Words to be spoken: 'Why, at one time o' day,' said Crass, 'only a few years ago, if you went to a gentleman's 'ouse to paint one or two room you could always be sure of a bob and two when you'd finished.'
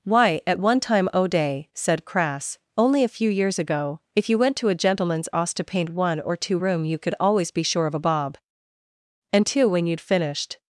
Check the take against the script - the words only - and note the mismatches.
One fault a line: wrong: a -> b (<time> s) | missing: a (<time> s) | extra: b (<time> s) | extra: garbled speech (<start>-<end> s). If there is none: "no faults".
no faults